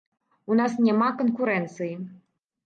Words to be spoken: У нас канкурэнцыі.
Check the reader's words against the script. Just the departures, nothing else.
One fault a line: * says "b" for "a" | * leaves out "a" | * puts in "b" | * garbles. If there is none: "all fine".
* puts in "няма"